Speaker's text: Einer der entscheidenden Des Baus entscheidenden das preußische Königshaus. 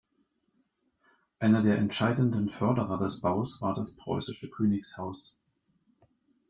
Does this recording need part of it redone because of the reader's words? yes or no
yes